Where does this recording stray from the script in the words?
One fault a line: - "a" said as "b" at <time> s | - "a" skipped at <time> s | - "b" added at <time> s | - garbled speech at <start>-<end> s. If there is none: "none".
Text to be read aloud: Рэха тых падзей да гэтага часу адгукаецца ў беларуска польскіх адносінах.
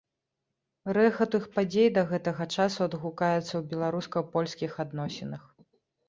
none